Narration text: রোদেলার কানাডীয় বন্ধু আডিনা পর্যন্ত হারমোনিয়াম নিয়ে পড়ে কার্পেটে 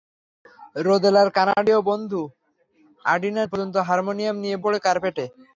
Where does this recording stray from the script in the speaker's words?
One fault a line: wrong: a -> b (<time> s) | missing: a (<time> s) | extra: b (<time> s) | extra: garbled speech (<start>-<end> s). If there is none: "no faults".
no faults